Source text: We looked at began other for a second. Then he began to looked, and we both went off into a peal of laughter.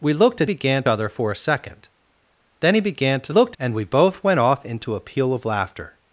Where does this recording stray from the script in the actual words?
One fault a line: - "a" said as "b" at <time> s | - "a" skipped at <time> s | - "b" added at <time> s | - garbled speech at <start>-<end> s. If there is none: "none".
none